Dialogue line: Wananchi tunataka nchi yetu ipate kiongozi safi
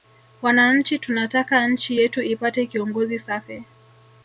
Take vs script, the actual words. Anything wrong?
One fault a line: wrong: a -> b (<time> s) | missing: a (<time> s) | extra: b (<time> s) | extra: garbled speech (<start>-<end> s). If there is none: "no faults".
no faults